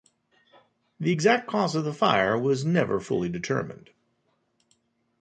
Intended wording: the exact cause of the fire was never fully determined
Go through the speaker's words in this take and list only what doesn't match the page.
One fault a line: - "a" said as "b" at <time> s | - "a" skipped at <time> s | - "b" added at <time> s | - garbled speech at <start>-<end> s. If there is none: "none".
none